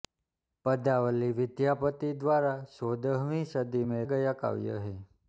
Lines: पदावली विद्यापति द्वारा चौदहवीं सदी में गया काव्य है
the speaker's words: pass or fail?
pass